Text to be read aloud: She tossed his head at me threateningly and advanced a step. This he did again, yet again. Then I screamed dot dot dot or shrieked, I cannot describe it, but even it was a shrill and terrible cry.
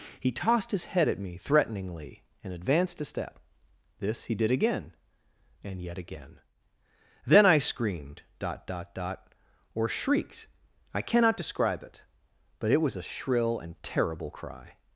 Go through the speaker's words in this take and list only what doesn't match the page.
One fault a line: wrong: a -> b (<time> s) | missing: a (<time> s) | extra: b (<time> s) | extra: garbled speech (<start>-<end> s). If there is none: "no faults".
wrong: She -> He (0.2 s)
extra: and (5.6 s)
missing: even (12.7 s)